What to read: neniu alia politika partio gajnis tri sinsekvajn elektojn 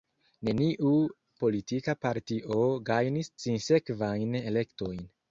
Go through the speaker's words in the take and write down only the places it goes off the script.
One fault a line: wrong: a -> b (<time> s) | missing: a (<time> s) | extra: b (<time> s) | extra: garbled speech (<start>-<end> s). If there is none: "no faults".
missing: alia (0.9 s)
missing: tri (3.3 s)